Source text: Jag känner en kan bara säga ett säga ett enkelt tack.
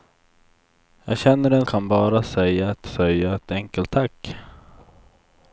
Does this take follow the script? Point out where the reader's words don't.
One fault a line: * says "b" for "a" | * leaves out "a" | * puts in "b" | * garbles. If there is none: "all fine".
all fine